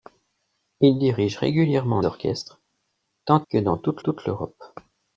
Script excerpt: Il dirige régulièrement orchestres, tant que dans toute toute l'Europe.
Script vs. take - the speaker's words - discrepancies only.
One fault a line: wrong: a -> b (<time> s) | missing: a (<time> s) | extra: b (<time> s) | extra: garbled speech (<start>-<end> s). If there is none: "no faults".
no faults